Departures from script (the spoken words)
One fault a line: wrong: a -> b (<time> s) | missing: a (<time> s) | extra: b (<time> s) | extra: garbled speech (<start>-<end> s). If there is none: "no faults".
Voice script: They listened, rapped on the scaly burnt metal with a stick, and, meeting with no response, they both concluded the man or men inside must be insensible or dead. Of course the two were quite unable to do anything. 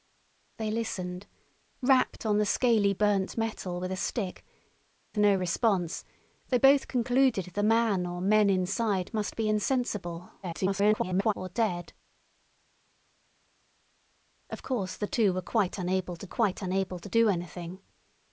missing: and meeting with (4.4 s)
extra: garbled speech (10.4-11.3 s)
extra: quite unable to (16.3 s)